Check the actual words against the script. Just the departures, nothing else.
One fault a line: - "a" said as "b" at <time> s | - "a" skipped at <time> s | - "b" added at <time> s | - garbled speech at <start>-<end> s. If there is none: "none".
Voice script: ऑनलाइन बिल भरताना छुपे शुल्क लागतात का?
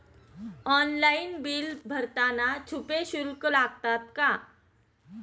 none